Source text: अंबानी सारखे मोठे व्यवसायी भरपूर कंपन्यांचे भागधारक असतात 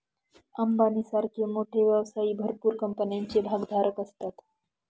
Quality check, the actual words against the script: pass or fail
pass